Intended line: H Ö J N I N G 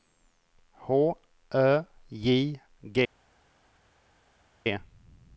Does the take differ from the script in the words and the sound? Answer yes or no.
yes